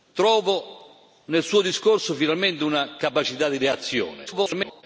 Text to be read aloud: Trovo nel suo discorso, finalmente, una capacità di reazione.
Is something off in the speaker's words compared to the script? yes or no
yes